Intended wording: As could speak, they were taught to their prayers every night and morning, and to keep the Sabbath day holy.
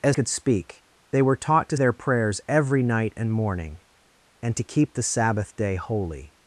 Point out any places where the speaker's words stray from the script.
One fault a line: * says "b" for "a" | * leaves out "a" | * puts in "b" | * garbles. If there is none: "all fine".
all fine